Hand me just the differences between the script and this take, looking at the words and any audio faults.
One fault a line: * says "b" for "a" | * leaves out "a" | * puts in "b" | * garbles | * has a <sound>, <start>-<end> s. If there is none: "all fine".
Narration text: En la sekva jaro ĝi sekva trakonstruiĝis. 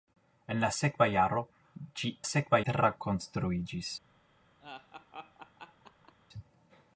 * has a laugh, 4.6-6.1 s